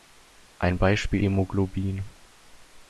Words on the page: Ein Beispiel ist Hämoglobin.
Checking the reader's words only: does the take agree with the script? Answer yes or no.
no